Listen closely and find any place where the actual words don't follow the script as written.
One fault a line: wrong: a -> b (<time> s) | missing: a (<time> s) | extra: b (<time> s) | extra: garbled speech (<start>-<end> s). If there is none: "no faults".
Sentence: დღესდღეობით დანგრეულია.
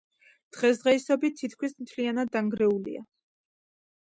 extra: თითქმის მთლიანად (1.4 s)